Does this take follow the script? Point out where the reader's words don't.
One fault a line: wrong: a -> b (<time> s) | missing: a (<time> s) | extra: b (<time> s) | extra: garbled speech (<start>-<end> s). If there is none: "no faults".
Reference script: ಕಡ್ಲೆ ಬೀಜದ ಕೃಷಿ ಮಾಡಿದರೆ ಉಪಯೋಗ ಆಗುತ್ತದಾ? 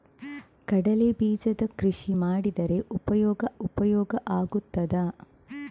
extra: ಉಪಯೋಗ (3.6 s)